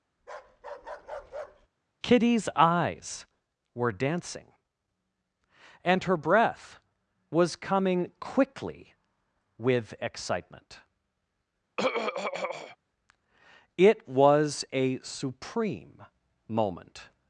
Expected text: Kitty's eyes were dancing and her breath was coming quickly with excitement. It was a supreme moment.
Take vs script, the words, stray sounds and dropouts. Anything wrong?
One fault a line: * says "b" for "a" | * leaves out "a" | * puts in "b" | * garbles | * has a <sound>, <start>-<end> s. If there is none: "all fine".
* has a bark, 0.2-1.7 s
* has a throat clearing, 11.8-12.8 s